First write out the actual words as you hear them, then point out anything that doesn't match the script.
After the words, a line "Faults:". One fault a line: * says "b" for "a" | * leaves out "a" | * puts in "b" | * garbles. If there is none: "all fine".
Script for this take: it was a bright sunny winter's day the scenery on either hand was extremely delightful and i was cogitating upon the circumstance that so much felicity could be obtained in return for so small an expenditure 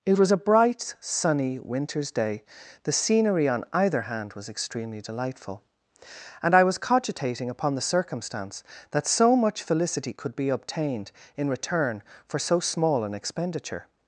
it was a bright sunny winter's day the scenery on either hand was extremely delightful and i was cogitating upon the circumstance that so much felicity could be obtained in return for so small an expenditure
Faults:
all fine